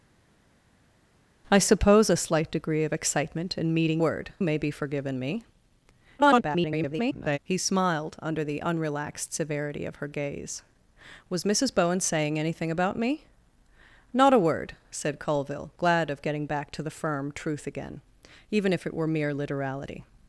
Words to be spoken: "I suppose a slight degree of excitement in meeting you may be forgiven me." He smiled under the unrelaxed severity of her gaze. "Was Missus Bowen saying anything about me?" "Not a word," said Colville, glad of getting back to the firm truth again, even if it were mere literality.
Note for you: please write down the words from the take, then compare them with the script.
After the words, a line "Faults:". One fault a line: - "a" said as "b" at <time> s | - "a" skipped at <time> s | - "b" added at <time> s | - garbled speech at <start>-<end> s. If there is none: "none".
"I suppose a slight degree of excitement in meeting word may be forgiven me." [garbled] He smiled under the unrelaxed severity of her gaze. "Was Missus Bowen saying anything about me?" "Not a word," said Colville, glad of getting back to the firm truth again, even if it were mere literality.
Faults:
- "you" said as "word" at 4.0 s
- garbled speech at 6.2-7.4 s